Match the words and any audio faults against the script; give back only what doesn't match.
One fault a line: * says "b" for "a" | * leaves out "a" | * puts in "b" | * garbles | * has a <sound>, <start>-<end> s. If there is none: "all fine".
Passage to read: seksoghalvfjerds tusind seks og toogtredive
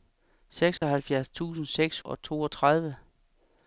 * has a dropout, 0.8-0.8 s